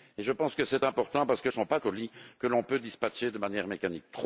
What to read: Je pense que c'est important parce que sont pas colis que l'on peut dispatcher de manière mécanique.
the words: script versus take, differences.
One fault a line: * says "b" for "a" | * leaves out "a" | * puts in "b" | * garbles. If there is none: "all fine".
all fine